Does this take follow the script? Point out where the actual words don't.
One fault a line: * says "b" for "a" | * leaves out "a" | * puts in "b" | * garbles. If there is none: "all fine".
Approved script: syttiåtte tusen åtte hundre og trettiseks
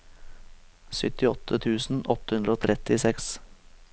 all fine